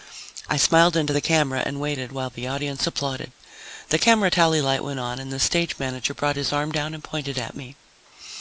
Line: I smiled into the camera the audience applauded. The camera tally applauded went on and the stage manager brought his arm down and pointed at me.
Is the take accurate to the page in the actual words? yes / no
no